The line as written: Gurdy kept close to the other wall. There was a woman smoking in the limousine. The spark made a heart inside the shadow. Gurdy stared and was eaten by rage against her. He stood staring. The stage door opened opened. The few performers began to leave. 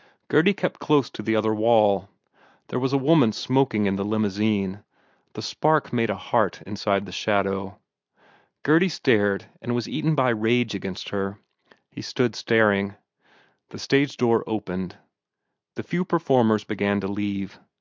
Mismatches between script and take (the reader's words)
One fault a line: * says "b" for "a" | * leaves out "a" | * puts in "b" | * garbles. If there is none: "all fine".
* leaves out "opened"